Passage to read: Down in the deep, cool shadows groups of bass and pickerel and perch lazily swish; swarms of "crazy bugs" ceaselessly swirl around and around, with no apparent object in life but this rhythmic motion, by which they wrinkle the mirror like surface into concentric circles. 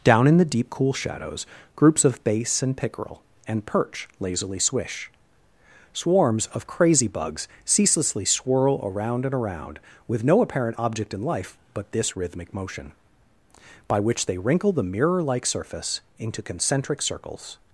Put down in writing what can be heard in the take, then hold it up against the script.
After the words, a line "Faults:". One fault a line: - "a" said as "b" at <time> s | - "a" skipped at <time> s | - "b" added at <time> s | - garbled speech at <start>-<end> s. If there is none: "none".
Down in the deep, cool shadows groups of bass and pickerel and perch lazily swish; swarms of "crazy bugs" ceaselessly swirl around and around, with no apparent object in life but this rhythmic motion, by which they wrinkle the mirror like surface into concentric circles.
Faults:
none